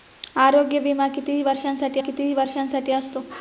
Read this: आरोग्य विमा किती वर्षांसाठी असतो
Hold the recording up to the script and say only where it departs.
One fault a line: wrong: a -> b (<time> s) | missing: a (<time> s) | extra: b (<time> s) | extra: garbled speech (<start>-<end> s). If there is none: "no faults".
extra: किती वर्षांसाठी (2.0 s)